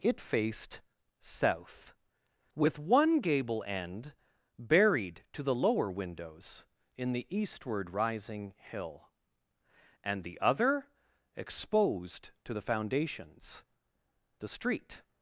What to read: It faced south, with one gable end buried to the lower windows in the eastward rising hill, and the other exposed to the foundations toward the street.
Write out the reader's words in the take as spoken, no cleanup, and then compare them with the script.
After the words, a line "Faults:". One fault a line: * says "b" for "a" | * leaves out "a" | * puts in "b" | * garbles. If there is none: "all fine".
It faced south, with one gable end buried to the lower windows in the eastward rising hill, and the other exposed to the foundations the street.
Faults:
* leaves out "toward"